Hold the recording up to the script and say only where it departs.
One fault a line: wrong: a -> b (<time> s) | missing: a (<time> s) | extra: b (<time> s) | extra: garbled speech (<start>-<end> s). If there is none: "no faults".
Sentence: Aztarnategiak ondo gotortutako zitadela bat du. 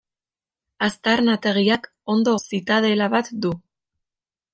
missing: gotortutako (2.3 s)